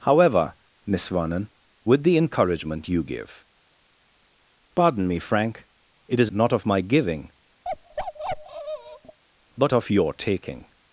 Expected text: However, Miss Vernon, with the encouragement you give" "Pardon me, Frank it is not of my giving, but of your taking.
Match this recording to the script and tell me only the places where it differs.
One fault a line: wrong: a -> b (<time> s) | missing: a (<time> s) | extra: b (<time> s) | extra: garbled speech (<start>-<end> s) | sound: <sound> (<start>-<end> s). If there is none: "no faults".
sound: bark (7.6-9.2 s)